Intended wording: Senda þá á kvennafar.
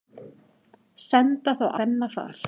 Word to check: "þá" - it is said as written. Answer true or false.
true